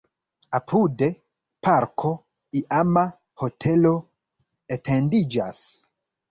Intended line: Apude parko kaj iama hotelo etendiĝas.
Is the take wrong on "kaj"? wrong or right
wrong